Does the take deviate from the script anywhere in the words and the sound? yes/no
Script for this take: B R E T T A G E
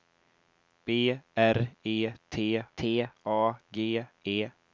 no